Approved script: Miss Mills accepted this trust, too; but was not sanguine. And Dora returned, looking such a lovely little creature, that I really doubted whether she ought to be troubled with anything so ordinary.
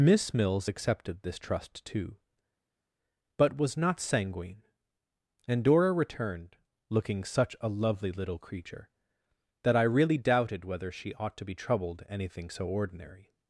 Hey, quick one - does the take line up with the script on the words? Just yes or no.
no